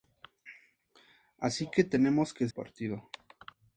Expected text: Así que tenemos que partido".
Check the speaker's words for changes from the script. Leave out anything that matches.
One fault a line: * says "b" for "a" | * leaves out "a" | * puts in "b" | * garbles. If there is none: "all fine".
all fine